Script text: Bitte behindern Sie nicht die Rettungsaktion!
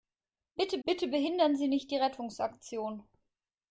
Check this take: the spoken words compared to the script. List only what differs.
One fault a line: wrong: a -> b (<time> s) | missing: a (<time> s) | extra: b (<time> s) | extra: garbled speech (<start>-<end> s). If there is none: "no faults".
extra: bitte (0.8 s)